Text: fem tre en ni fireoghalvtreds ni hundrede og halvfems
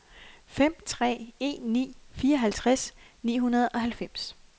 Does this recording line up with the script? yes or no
yes